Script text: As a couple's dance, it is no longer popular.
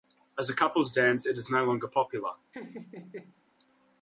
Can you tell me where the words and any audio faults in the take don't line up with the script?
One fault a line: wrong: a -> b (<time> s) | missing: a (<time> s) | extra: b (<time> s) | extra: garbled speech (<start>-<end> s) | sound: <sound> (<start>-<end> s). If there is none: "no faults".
sound: laugh (2.5-3.4 s)